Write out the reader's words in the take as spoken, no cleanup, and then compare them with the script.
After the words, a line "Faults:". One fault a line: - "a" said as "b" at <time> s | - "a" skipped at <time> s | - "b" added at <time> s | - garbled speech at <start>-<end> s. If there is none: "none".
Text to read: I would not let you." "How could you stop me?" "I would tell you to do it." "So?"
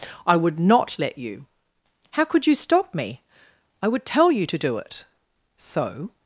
I would not let you." "How could you stop me?" "I would tell you to do it." "So?"
Faults:
none